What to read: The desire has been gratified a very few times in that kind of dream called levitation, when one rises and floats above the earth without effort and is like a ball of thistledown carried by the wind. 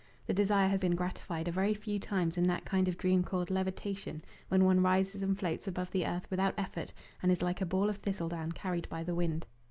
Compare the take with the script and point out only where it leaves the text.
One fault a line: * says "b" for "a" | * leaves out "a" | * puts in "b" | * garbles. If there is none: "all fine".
all fine